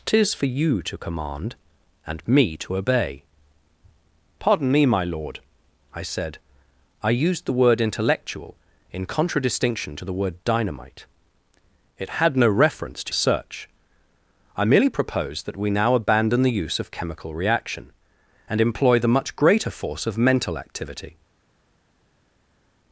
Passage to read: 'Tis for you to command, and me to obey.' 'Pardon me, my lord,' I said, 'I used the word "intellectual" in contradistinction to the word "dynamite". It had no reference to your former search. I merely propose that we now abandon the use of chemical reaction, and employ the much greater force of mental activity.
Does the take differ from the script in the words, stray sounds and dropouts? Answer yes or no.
yes